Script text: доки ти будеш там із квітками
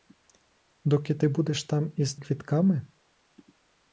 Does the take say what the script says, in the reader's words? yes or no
yes